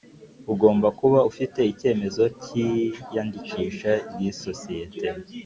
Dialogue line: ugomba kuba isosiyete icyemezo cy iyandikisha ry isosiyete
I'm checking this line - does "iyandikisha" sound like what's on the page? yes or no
yes